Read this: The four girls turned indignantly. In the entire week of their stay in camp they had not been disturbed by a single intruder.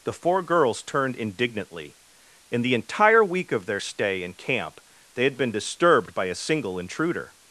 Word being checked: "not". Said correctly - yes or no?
no